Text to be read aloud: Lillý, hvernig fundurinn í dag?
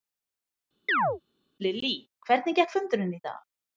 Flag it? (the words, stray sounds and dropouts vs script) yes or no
yes